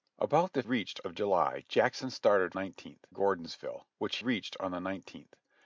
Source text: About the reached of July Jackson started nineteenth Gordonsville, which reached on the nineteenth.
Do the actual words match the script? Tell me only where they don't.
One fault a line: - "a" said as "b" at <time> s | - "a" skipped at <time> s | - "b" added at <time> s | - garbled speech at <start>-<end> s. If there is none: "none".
none